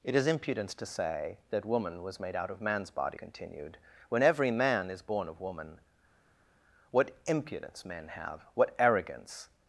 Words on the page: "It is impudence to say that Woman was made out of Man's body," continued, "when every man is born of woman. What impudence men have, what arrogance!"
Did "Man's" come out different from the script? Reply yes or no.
no